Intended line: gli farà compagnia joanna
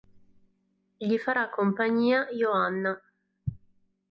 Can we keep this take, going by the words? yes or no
yes